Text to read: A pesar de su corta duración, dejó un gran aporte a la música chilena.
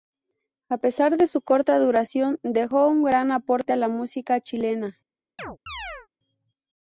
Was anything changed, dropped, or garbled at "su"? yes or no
no